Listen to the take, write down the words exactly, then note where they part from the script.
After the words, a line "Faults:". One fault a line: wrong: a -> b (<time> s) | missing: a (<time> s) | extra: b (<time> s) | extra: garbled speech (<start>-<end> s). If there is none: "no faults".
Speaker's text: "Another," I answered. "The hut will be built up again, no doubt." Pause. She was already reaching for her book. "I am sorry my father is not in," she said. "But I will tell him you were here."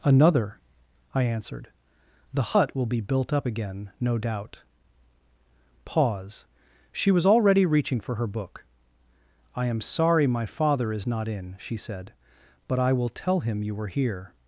"Another," I answered. "The hut will be built up again, no doubt." Pause. She was already reaching for her book. "I am sorry my father is not in," she said. "But I will tell him you were here."
Faults:
no faults